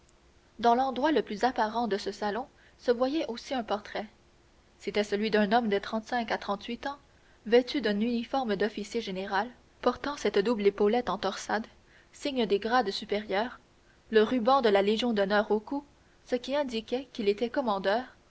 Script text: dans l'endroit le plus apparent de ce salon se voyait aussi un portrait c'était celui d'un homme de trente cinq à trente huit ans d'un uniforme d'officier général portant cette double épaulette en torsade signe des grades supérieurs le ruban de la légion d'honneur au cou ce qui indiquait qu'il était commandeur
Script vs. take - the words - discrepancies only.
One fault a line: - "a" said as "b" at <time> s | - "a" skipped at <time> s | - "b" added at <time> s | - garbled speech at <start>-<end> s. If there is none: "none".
- "vêtu" added at 7.5 s